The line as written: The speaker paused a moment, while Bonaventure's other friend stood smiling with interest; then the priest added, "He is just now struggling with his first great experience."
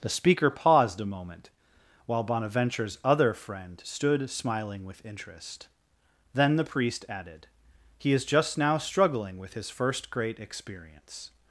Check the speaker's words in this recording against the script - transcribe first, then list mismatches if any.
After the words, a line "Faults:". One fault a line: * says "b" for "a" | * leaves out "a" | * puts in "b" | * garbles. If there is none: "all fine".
The speaker paused a moment, while Bonaventure's other friend stood smiling with interest; then the priest added, "He is just now struggling with his first great experience."
Faults:
all fine